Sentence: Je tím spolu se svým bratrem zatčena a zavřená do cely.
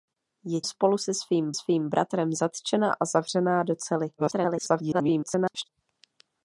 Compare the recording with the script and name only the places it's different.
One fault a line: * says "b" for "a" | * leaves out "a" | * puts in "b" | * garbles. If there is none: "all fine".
* leaves out "tím"
* puts in "svým"
* garbles